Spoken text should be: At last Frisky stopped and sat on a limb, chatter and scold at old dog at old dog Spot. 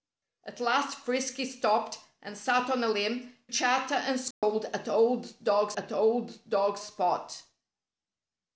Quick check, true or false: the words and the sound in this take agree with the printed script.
false